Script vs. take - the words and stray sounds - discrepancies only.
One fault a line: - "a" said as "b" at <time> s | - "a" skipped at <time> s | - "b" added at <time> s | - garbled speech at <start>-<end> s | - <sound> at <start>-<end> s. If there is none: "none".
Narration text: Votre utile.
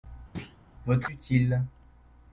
- thud at 0.3-0.6 s